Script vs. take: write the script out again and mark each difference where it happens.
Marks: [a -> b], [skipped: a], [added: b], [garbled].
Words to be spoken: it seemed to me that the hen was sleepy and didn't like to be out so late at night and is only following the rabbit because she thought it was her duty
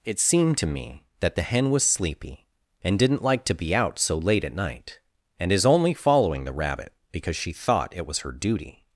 it seemed to me that the hen was sleepy and didn't like to be out so late at night and is only following the rabbit because she thought it was her duty